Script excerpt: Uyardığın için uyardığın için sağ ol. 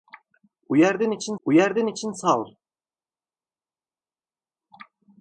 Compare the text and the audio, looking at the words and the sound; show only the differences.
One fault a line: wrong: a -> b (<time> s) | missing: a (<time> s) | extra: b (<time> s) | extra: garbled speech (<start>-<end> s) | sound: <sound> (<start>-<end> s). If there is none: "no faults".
no faults